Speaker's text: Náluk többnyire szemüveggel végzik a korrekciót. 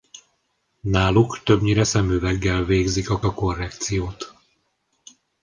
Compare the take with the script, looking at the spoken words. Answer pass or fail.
fail